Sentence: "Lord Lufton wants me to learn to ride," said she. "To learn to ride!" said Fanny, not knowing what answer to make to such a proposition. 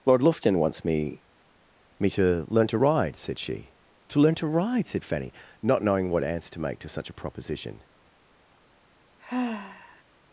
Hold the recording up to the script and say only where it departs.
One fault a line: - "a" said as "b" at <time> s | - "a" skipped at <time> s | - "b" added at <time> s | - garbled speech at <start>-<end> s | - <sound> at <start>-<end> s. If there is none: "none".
- "me" added at 2.0 s
- sigh at 9.2-10.0 s